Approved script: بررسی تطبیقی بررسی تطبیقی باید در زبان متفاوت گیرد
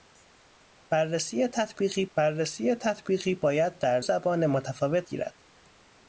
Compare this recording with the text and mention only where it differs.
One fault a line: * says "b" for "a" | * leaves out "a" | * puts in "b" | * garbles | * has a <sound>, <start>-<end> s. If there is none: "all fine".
all fine